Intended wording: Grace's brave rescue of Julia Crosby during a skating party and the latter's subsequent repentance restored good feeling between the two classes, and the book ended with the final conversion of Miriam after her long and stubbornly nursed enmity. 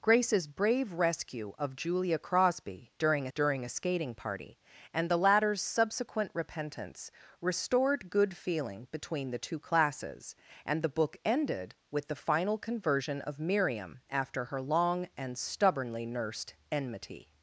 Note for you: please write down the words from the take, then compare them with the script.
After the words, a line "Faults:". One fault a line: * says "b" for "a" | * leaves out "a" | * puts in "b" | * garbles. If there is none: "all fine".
Grace's brave rescue of Julia Crosby during during a skating party and the latter's subsequent repentance restored good feeling between the two classes, and the book ended with the final conversion of Miriam after her long and stubbornly nursed enmity.
Faults:
* puts in "during"